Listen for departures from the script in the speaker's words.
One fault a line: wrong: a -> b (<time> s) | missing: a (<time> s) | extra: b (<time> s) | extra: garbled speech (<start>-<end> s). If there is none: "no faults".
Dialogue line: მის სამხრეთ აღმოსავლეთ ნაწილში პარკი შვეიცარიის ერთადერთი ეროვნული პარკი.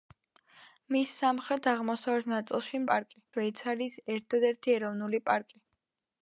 no faults